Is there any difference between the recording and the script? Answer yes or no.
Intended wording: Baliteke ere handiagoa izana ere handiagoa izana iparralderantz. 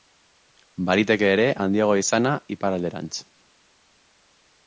yes